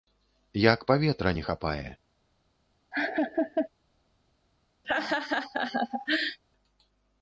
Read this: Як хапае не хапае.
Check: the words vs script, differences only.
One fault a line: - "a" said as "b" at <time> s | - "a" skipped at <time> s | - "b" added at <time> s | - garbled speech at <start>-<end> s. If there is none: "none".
- "хапае" said as "паветра" at 0.9 s